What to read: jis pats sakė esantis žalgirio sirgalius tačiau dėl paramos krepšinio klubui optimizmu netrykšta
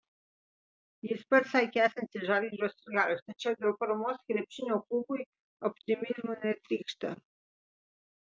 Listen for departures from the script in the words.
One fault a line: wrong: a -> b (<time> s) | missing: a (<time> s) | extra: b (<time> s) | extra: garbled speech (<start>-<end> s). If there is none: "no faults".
no faults